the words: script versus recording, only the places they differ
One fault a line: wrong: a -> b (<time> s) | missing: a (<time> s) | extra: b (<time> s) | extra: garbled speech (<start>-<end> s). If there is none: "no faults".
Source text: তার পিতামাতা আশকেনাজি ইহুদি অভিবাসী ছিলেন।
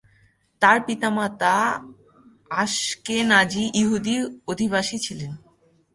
no faults